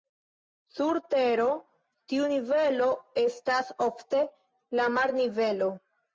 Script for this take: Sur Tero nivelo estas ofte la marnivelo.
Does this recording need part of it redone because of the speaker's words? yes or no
yes